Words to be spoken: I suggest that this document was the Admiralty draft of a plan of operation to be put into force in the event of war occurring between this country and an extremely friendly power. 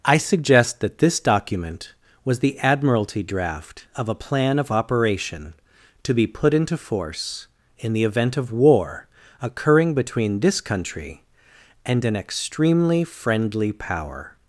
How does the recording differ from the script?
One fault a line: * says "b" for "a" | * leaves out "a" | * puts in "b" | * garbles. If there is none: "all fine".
all fine